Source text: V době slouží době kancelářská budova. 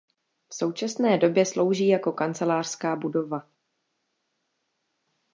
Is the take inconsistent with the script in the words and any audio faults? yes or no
yes